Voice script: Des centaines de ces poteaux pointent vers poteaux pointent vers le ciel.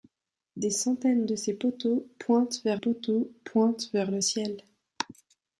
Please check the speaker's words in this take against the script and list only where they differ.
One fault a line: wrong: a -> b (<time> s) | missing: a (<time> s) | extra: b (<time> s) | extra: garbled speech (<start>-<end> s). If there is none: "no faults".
no faults